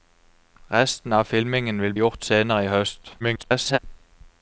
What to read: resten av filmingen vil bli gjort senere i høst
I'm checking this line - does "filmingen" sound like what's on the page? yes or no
yes